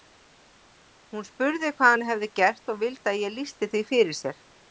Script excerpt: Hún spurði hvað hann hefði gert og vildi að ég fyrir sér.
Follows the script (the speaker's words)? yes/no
no